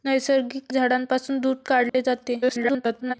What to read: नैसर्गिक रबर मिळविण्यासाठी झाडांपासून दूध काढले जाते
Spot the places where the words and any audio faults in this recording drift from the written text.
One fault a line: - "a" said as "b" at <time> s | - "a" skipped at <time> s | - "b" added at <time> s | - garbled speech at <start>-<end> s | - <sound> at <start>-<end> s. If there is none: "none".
- "रबर मिळविण्यासाठी" skipped at 0.7 s
- dropout at 1.9-1.9 s
- garbled speech at 2.4-3.1 s